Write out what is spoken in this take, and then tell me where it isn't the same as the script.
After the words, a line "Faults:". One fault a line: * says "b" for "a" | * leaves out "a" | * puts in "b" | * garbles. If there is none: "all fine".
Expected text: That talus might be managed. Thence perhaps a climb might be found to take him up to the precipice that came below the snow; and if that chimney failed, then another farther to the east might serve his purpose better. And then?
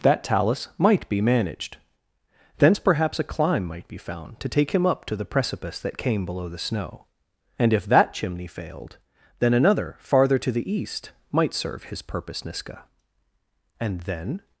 That talus might be managed. Thence perhaps a climb might be found to take him up to the precipice that came below the snow; and if that chimney failed, then another farther to the east might serve his purpose niska. And then?
Faults:
* says "niska" for "better"